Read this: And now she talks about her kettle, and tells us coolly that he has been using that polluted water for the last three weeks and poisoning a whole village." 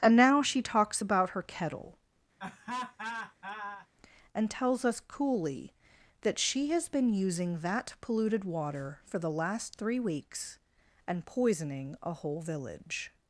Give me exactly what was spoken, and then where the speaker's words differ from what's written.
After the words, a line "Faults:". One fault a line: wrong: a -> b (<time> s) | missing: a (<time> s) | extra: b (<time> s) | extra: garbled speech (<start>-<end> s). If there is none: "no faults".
And now she talks about her kettle, and tells us coolly that she has been using that polluted water for the last three weeks and poisoning a whole village."
Faults:
wrong: he -> she (6.4 s)